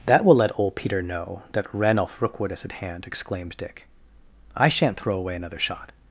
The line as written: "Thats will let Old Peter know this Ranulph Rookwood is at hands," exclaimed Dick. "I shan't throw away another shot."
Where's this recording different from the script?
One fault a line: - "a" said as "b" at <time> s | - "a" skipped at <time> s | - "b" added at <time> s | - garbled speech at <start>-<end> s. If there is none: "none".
- "Thats" said as "That" at 0.1 s
- "this" said as "that" at 1.5 s
- "hands" said as "hand" at 2.7 s